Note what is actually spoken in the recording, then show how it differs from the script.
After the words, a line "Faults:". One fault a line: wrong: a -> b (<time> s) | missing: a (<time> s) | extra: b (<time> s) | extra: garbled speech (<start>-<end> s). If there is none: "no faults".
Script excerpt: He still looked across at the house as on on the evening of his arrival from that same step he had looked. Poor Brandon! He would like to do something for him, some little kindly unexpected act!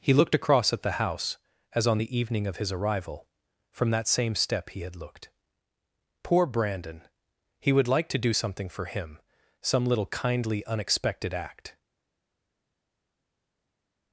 He looked across at the house as on the evening of his arrival from that same step he had looked. Poor Brandon! He would like to do something for him, some little kindly unexpected act!
Faults:
missing: still (0.1 s)
missing: on (2.0 s)